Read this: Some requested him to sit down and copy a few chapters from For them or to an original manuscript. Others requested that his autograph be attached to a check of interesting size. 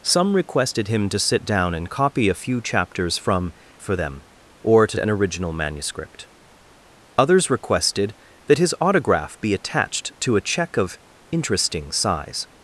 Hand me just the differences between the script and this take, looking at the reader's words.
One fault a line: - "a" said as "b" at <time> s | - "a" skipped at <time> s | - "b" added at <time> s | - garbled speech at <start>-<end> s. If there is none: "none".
none